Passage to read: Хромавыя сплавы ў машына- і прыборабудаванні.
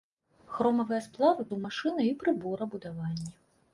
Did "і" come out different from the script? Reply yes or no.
no